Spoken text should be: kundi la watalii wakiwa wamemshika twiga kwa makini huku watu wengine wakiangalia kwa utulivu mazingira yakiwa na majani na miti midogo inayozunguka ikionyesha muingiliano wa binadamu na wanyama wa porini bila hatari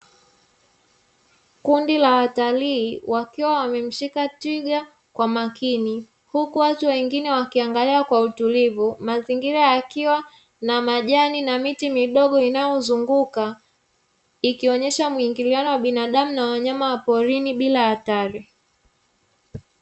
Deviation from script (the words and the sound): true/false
false